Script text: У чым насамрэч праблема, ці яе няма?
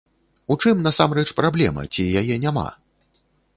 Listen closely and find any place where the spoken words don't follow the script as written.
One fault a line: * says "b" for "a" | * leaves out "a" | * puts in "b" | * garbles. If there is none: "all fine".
all fine